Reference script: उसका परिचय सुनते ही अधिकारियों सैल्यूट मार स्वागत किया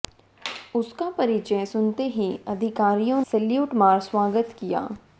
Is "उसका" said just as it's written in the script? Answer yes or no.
yes